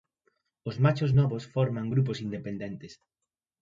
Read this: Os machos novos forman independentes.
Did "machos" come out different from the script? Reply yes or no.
no